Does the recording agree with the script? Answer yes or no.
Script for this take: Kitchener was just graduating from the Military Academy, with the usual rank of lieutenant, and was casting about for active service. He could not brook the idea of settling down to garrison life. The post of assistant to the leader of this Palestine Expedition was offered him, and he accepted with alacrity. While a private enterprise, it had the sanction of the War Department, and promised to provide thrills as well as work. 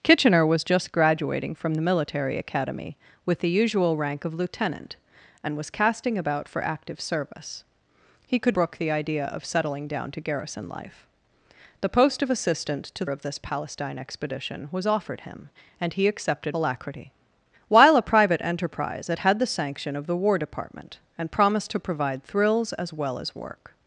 no